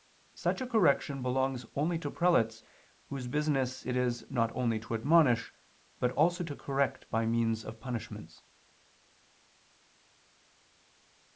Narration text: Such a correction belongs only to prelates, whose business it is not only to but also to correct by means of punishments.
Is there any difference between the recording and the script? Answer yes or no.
yes